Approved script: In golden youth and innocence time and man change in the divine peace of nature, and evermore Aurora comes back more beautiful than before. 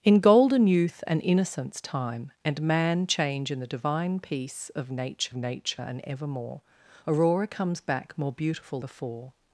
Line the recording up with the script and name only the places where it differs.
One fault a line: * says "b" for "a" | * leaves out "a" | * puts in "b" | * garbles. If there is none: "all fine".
* puts in "nature"
* leaves out "than"